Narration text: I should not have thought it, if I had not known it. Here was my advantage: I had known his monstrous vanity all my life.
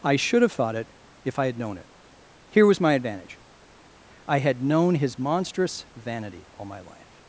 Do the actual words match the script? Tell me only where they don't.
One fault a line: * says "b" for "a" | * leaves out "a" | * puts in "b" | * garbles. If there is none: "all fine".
* leaves out "not"
* leaves out "not"